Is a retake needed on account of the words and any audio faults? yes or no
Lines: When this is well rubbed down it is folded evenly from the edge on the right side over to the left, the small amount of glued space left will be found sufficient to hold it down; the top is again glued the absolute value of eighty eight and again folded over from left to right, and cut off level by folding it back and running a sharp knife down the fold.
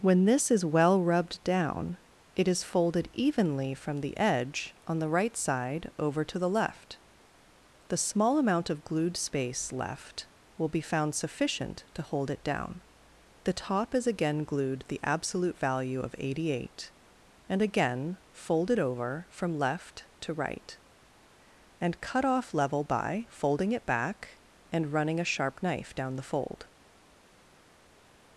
no